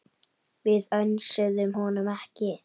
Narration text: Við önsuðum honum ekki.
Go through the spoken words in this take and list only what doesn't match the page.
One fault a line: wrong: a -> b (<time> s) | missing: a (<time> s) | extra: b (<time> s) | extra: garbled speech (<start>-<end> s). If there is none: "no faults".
no faults